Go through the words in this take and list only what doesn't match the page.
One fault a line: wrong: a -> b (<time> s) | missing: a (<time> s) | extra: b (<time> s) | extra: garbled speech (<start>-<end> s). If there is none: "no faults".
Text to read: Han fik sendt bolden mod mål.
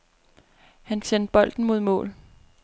missing: fik (1.0 s)